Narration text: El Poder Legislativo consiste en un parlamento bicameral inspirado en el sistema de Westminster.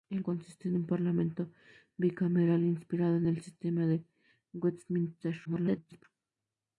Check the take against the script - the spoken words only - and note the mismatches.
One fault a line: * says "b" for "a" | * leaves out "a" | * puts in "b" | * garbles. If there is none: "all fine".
* leaves out "Poder Legislativo"
* garbles